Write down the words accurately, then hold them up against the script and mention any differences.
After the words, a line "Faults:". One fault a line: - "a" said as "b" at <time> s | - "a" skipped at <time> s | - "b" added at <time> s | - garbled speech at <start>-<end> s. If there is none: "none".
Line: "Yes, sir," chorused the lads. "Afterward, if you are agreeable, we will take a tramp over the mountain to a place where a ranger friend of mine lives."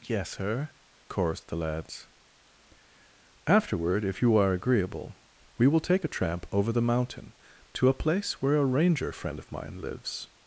"Yes, sir," chorused the lads. "Afterward, if you are agreeable, we will take a tramp over the mountain to a place where a ranger friend of mine lives."
Faults:
none